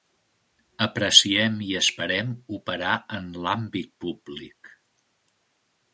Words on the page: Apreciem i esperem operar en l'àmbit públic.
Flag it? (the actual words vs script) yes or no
no